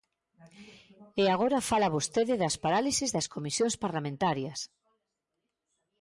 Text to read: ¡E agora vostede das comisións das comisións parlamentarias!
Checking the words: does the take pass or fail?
fail